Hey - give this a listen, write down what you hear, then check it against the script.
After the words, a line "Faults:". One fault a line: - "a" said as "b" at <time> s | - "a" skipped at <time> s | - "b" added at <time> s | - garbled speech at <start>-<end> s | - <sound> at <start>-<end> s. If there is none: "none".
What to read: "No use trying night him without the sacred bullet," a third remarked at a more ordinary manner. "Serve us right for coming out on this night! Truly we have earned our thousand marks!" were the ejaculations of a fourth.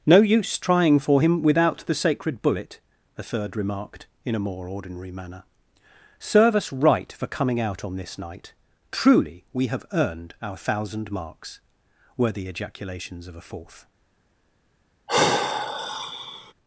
"No use trying for him without the sacred bullet," a third remarked in a more ordinary manner. "Serve us right for coming out on this night! Truly we have earned our thousand marks!" were the ejaculations of a fourth.
Faults:
- "night" said as "for" at 1.0 s
- "at" said as "in" at 4.2 s
- sigh at 15.1-16.5 s